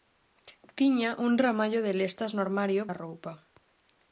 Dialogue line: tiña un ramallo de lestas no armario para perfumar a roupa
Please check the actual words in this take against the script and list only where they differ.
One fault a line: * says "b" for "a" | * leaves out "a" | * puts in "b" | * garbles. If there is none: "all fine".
* leaves out "para perfumar"